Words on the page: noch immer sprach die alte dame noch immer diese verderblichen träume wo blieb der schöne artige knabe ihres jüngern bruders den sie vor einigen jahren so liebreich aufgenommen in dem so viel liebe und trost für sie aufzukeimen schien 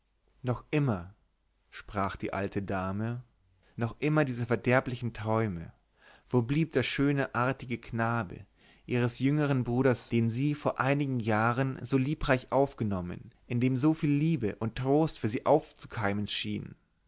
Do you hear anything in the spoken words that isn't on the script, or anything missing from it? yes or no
no